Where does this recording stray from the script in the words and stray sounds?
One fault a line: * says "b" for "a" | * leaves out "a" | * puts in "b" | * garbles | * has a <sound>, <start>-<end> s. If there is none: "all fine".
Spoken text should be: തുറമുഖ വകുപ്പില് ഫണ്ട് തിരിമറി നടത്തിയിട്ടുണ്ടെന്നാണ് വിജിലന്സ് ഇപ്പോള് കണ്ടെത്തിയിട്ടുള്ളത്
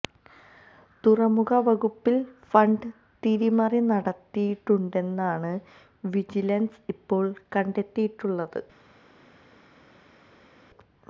all fine